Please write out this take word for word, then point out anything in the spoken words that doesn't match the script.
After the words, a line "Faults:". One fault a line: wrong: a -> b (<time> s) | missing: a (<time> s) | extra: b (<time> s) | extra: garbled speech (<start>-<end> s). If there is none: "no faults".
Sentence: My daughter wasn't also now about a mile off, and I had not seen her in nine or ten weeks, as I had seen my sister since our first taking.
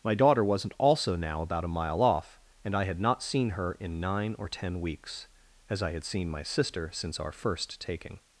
My daughter wasn't also now about a mile off, and I had not seen her in nine or ten weeks, as I had seen my sister since our first taking.
Faults:
no faults